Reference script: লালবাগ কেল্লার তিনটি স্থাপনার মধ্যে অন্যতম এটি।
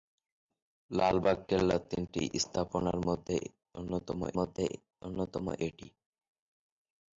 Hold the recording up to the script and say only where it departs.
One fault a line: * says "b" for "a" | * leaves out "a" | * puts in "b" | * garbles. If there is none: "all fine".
* puts in "মধ্যে অন্যতম"